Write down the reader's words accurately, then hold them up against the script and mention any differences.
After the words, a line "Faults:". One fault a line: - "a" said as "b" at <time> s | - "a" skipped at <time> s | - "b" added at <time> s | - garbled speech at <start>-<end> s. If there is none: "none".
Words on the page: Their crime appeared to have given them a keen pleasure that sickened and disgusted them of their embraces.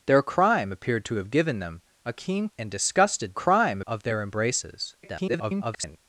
Their crime appeared to have given them a keen and disgusted crime of their embraces. [garbled]
Faults:
- "pleasure that sickened" skipped at 2.5 s
- "them" said as "crime" at 3.3 s
- garbled speech at 5.0-6.0 s